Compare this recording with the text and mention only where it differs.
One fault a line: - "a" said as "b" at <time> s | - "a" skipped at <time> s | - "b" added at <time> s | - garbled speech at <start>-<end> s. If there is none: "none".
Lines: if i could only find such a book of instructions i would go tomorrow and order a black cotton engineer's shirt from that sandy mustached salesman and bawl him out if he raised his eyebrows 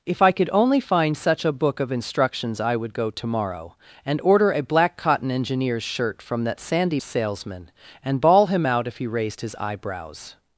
- "mustached" skipped at 7.0 s